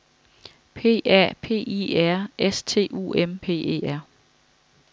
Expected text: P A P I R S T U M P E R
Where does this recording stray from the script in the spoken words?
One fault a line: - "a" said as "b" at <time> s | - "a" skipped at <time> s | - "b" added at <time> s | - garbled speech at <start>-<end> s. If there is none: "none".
none